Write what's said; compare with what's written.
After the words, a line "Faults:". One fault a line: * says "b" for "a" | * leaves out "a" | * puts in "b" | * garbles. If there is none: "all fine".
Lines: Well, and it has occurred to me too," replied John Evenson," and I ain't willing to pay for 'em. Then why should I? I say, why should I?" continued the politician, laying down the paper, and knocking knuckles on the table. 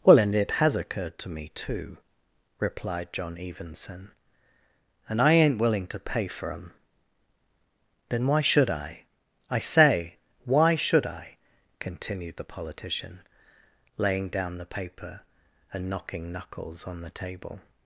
Well, and it has occurred to me too," replied John Evenson," and I ain't willing to pay for 'em. Then why should I? I say, why should I?" continued the politician, laying down the paper, and knocking knuckles on the table.
Faults:
all fine